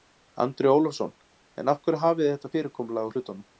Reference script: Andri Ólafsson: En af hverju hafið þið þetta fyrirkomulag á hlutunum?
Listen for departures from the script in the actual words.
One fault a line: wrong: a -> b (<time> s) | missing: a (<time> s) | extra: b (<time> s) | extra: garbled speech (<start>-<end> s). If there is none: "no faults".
no faults